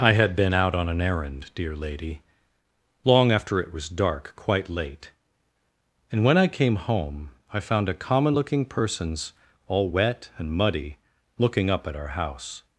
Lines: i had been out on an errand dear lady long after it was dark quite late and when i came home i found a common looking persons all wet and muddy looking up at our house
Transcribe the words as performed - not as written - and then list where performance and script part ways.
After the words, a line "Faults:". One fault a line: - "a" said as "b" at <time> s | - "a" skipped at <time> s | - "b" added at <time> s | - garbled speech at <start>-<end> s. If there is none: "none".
i had been out on an errand dear lady long after it was dark quite late and when i came home i found a common looking persons all wet and muddy looking up at our house
Faults:
none